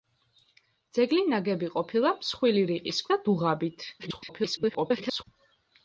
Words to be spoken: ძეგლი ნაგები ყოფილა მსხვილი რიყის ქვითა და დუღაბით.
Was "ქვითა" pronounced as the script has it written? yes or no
no